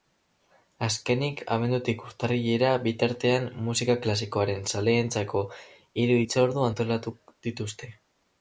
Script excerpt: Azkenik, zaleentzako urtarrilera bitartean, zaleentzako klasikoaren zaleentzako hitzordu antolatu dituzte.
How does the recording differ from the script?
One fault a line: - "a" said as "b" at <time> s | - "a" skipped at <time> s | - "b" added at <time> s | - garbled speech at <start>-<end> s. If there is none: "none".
- "zaleentzako" said as "abendutik" at 1.6 s
- "zaleentzako" said as "musika" at 3.7 s
- "hiru" added at 6.0 s